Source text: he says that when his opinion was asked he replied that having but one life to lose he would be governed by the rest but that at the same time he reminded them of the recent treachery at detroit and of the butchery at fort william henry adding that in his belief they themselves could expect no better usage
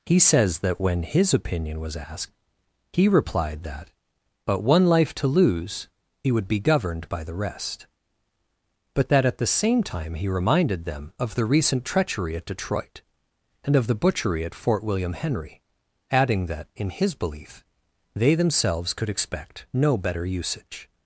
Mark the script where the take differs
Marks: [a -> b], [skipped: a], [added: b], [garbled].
he says that when his opinion was asked he replied that [skipped: having] but one life to lose he would be governed by the rest but that at the same time he reminded them of the recent treachery at detroit and of the butchery at fort william henry adding that in his belief they themselves could expect no better usage